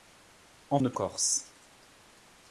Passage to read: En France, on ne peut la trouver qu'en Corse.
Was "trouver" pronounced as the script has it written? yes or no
no